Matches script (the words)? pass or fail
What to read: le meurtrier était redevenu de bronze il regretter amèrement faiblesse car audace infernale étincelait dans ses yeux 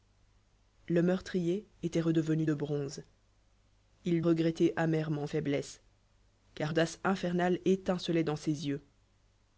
pass